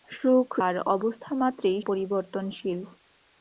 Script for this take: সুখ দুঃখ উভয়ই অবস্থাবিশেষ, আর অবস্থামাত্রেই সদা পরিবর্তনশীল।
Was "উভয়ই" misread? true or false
true